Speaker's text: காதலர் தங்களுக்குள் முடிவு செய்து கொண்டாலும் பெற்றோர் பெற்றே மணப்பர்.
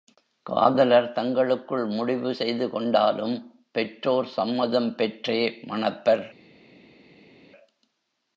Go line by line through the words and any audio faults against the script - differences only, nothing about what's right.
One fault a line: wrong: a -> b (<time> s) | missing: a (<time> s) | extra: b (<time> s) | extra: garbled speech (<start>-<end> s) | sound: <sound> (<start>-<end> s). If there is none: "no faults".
extra: சம்மதம் (4.3 s)